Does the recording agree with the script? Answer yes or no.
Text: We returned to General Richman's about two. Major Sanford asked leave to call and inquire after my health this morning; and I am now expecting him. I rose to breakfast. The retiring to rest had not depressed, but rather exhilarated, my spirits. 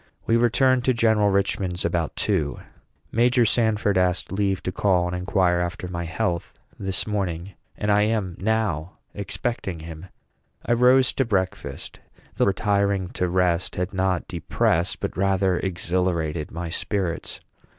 yes